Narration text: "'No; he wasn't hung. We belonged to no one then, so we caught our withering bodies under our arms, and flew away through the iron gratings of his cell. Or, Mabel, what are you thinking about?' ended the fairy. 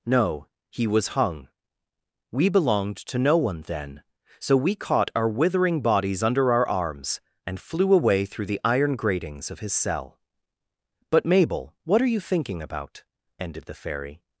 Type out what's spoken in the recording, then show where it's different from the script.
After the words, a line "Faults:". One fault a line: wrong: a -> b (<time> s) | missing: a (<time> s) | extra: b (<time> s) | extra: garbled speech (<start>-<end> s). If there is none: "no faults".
"'No; he was hung. We belonged to no one then, so we caught our withering bodies under our arms, and flew away through the iron gratings of his cell. But, Mabel, what are you thinking about?' ended the fairy.
Faults:
wrong: wasn't -> was (0.9 s)
wrong: Or -> But (11.1 s)